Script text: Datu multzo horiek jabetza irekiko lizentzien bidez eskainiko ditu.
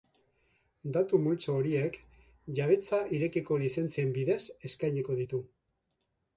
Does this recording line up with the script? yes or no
yes